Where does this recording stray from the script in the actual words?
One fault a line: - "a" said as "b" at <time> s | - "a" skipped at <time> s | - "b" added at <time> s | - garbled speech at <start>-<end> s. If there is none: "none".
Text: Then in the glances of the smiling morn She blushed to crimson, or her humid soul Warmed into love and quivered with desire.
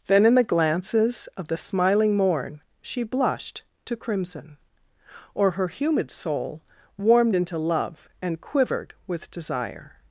none